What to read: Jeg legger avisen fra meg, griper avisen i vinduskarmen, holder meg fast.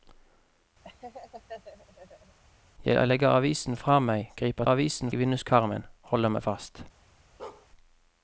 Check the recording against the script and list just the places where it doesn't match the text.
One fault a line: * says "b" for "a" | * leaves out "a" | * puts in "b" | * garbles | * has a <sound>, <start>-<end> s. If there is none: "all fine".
* has a laugh, 0.8-2.4 s
* has a bark, 7.4-7.7 s